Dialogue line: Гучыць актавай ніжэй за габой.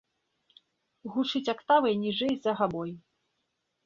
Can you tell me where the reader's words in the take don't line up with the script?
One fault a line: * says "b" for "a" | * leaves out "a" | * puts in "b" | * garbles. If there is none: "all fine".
all fine